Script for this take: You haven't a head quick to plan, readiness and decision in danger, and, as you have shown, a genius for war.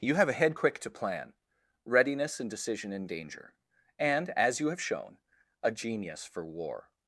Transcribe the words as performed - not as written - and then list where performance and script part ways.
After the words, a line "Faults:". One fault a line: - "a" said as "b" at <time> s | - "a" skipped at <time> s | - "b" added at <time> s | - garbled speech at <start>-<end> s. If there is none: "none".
You have a head quick to plan, readiness and decision in danger, and, as you have shown, a genius for war.
Faults:
- "haven't" said as "have" at 0.1 s